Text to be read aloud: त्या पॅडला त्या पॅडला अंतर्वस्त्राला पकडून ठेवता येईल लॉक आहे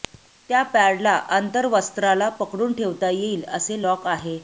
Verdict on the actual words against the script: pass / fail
fail